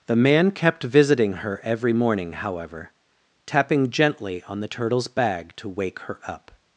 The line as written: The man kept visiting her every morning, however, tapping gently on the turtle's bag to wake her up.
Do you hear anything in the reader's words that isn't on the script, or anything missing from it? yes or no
no